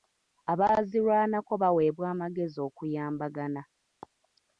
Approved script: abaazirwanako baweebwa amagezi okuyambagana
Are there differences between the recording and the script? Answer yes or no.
no